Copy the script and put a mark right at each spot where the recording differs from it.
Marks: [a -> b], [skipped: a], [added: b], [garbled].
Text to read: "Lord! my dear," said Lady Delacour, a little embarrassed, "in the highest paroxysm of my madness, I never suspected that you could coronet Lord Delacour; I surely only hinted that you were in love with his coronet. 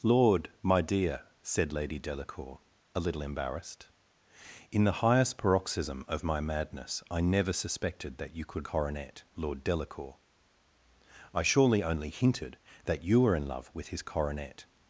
"Lord! my dear," said Lady Delacour, a little embarrassed, "in the highest paroxysm of my madness, I never suspected that you could coronet Lord Delacour; I surely only hinted that you were in love with his coronet.